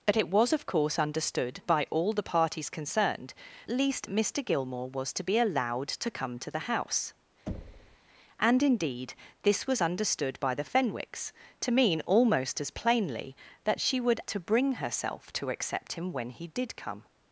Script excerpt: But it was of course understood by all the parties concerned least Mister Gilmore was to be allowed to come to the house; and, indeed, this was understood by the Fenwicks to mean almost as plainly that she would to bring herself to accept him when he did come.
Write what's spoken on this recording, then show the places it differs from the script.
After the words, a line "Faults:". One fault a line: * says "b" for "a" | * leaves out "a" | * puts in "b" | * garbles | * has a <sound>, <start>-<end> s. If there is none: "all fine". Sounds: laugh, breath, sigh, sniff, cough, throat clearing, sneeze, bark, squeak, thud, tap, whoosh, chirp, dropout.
But it was of course understood by all the parties concerned least Mister Gilmore was to be allowed to come to the house; and, indeed, this was understood by the Fenwicks to mean almost as plainly that she would to bring herself to accept him when he did come.
Faults:
* has a thud, 7.5-8.0 s